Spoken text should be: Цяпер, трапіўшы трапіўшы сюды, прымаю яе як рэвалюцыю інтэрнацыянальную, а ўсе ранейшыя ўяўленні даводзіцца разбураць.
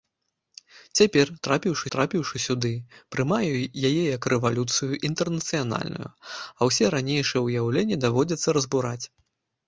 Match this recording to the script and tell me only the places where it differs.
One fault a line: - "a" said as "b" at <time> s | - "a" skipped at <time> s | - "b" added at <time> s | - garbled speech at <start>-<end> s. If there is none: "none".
none